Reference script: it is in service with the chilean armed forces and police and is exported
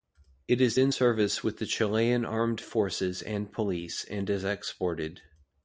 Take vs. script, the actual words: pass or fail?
pass